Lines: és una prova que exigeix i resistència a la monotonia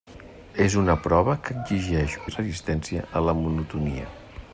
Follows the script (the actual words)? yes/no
yes